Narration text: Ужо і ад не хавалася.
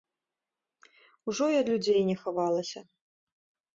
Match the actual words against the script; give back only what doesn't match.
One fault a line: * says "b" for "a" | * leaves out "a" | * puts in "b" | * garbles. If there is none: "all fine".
* puts in "людзей"